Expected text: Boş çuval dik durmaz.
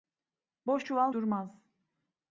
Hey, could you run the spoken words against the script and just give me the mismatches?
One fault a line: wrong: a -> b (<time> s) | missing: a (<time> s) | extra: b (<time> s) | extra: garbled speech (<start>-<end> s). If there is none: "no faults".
missing: dik (1.2 s)